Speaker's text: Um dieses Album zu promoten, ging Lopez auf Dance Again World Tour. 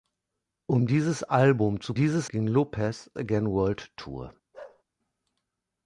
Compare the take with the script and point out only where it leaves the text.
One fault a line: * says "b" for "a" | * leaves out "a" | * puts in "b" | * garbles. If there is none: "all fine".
* says "dieses" for "promoten"
* leaves out "auf Dance"